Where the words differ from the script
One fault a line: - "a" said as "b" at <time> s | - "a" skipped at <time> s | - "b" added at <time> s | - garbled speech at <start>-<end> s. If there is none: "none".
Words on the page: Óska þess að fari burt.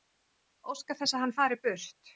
- "hann" added at 1.3 s